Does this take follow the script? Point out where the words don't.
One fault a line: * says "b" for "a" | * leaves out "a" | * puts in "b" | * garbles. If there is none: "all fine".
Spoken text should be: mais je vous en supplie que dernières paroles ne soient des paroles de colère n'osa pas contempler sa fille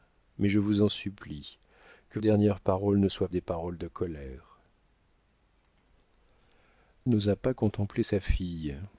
all fine